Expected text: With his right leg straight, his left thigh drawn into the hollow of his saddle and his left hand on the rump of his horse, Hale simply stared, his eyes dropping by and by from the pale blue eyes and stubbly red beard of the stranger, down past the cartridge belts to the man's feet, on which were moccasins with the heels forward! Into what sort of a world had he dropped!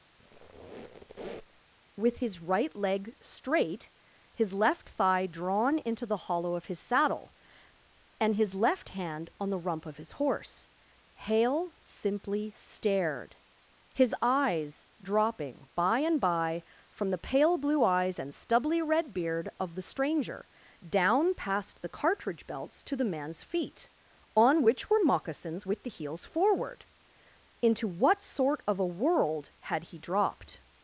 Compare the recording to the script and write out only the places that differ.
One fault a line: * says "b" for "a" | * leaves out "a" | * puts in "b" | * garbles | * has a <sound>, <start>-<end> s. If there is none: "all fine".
* has a squeak, 0.2-1.6 s